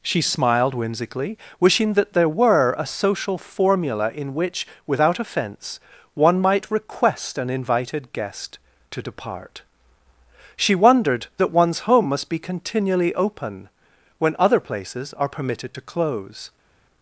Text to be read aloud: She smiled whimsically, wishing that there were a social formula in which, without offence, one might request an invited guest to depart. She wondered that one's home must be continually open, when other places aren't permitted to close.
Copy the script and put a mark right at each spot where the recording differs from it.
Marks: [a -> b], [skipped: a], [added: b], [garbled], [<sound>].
She smiled whimsically, wishing that there were a social formula in which, without offence, one might request an invited guest to depart. She wondered that one's home must be continually open, when other places [aren't -> are] permitted to close.